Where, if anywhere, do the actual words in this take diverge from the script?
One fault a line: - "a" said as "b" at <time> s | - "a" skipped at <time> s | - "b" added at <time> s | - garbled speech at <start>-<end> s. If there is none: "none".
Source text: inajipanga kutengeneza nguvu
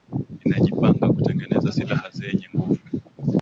- "silaha zenye" added at 1.8 s